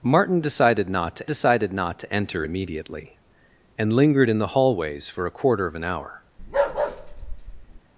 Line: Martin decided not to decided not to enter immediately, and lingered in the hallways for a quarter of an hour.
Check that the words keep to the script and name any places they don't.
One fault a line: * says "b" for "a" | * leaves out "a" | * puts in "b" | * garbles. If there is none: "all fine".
all fine